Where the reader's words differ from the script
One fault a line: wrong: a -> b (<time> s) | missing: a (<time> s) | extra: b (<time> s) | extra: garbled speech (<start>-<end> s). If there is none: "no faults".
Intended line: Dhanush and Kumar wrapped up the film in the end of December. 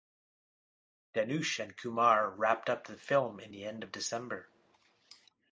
no faults